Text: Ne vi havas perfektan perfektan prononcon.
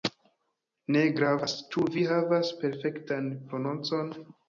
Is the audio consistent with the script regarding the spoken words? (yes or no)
no